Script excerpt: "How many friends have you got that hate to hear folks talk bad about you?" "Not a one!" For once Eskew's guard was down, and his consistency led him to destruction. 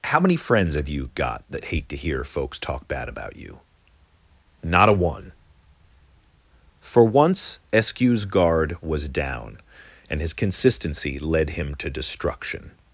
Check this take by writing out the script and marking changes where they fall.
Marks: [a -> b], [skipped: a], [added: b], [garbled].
"How many friends have you got that hate to hear folks talk bad about you?" "Not a one!" For once Eskew's guard was down, and his consistency led him to destruction.